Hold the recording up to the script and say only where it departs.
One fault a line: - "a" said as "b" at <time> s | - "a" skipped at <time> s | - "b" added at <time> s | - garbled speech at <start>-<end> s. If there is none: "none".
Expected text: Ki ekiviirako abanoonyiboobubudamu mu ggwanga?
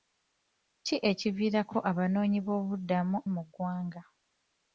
none